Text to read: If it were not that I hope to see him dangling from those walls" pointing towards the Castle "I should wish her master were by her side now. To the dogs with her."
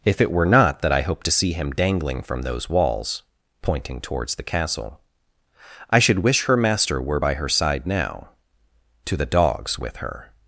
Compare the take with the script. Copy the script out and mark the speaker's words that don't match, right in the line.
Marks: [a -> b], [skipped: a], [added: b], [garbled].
If it were not that I hope to see him dangling from those walls" pointing towards the Castle "I should wish her master were by her side now. To the dogs with her."